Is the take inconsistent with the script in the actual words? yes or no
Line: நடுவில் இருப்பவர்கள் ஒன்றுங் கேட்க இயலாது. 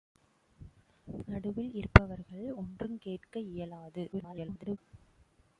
yes